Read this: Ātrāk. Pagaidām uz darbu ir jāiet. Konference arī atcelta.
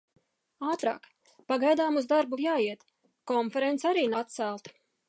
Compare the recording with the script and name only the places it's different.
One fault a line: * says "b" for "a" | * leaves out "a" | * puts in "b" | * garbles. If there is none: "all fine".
all fine